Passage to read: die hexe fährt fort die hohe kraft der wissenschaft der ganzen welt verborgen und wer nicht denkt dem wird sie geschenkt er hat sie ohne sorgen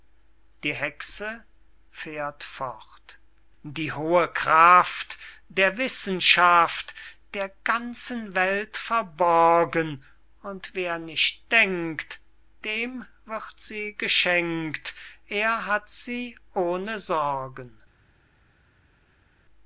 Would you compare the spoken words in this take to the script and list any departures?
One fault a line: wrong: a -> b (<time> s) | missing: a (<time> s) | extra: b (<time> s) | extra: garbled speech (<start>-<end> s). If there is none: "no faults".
no faults